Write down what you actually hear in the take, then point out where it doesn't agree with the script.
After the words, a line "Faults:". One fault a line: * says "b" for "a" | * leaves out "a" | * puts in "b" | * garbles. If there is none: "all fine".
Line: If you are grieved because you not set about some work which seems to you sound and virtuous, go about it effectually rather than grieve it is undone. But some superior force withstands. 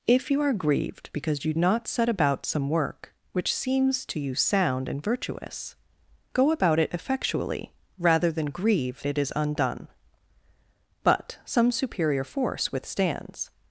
If you are grieved because you not set about some work which seems to you sound and virtuous, go about it effectually rather than grieve it is undone. But some superior force withstands.
Faults:
all fine